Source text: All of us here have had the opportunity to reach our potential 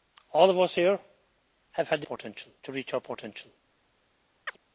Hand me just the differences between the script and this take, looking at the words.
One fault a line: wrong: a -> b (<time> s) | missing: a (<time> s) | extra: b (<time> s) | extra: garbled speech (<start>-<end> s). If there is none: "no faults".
wrong: opportunity -> potential (2.0 s)